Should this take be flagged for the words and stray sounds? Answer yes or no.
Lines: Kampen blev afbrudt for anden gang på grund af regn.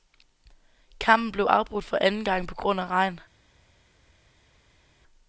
no